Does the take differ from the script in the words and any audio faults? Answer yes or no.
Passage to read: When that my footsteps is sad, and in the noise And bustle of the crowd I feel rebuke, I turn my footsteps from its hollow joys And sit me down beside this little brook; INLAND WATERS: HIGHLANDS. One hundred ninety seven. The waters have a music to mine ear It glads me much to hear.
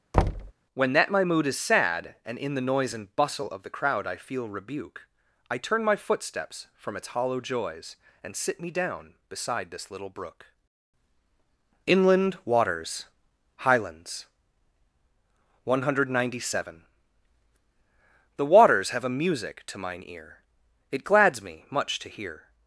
yes